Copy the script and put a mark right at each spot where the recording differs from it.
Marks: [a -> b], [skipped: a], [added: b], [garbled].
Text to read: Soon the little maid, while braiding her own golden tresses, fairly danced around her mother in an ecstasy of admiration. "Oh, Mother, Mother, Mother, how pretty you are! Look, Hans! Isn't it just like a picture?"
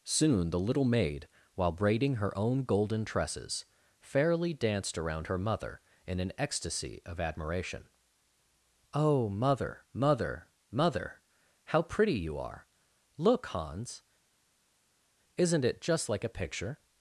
Soon the little maid, while braiding her own golden tresses, fairly danced around her mother in an ecstasy of admiration. "Oh, Mother, Mother, Mother, how pretty you are! Look, Hans! Isn't it just like a picture?"